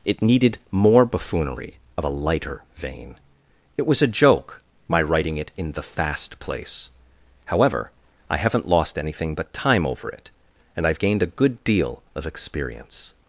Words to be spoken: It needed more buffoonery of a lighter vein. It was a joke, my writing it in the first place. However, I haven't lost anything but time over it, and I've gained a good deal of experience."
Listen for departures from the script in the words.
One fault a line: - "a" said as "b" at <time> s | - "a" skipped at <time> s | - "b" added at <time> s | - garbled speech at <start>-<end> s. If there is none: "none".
- "first" said as "fast" at 5.8 s